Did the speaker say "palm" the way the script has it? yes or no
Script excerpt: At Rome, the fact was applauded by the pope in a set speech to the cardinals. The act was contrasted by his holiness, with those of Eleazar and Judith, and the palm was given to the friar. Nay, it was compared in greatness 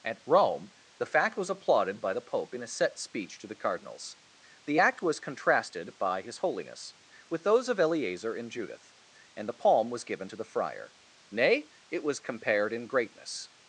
yes